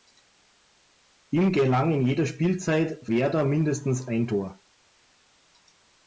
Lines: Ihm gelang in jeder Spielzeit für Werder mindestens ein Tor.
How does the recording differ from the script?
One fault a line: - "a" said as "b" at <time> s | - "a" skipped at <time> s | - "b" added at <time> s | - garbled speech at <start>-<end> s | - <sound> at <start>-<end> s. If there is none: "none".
- "für" skipped at 3.1 s